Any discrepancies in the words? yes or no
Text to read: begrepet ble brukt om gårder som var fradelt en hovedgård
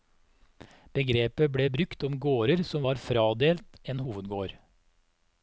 no